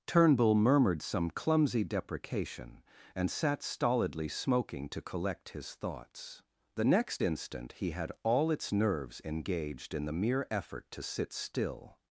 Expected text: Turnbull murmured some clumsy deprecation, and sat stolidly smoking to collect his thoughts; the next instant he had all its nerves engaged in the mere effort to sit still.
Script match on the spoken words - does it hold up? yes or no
yes